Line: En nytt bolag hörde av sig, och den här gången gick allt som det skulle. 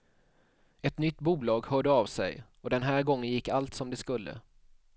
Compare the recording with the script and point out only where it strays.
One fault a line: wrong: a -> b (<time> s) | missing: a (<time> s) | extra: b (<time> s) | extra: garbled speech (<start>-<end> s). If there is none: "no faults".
wrong: En -> Ett (0.8 s)